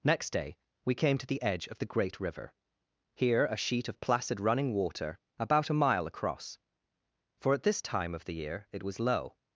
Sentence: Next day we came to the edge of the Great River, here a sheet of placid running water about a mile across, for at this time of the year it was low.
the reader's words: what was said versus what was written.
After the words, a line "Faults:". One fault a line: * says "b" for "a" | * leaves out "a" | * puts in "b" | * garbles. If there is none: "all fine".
Next day we came to the edge of the Great River, here a sheet of placid running water about a mile across, for at this time of the year it was low.
Faults:
all fine